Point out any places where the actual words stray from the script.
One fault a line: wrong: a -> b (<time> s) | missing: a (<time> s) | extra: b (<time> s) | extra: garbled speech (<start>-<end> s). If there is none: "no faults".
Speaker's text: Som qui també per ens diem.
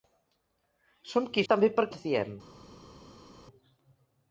no faults